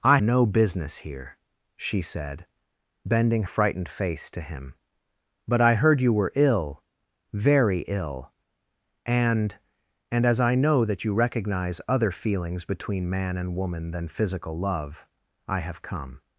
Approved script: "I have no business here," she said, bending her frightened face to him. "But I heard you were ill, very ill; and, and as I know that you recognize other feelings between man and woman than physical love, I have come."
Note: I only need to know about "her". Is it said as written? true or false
false